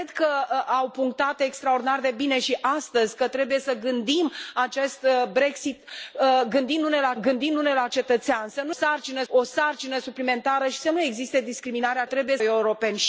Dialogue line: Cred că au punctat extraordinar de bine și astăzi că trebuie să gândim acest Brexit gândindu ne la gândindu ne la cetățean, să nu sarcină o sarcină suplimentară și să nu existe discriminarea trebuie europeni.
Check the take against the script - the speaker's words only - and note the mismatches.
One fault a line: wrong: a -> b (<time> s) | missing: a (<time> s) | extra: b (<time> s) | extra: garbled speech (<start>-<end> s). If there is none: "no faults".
no faults